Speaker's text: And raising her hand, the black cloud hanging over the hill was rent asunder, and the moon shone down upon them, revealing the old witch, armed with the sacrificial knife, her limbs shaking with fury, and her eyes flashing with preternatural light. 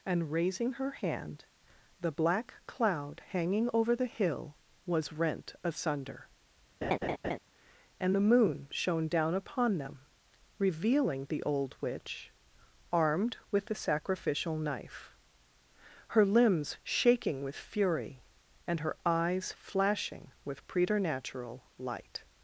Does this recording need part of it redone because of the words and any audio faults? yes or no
yes